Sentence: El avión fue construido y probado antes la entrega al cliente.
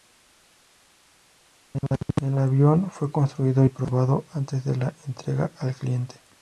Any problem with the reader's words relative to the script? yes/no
yes